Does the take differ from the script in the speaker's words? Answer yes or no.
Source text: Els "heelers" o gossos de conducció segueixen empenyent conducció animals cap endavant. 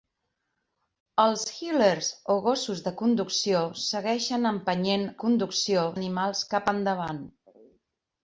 no